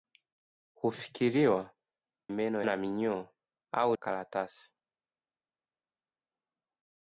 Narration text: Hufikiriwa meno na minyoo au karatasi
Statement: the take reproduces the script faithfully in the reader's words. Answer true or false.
true